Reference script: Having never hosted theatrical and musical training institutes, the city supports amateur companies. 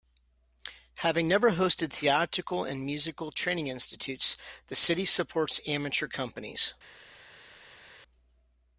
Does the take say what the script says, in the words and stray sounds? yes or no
yes